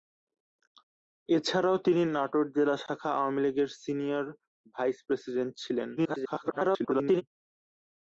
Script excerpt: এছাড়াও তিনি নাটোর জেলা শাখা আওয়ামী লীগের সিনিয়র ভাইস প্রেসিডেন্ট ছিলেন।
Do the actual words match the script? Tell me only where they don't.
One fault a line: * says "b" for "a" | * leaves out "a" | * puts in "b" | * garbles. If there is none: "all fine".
* garbles